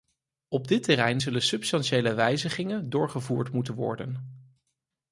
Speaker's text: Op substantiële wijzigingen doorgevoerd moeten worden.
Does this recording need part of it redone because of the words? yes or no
yes